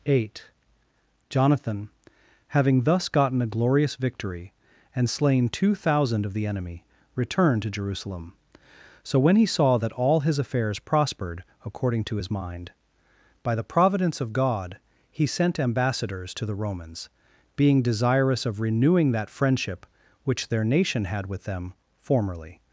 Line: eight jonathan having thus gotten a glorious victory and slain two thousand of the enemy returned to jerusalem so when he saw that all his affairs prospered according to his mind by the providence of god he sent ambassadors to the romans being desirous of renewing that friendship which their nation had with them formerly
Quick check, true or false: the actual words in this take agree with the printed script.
true